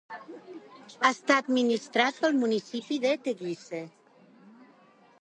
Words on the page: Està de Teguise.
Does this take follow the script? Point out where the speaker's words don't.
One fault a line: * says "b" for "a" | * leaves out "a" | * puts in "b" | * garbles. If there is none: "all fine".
* puts in "administrat pel municipi"